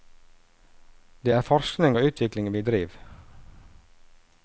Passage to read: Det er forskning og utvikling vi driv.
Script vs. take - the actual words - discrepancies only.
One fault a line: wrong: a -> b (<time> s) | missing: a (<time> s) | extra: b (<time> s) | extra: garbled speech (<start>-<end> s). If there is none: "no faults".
no faults